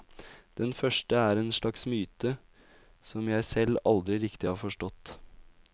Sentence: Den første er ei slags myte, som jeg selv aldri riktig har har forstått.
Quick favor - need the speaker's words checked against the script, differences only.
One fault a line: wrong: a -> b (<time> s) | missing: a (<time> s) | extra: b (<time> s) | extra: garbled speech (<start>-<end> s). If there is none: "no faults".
wrong: ei -> en (1.4 s)
missing: har (4.6 s)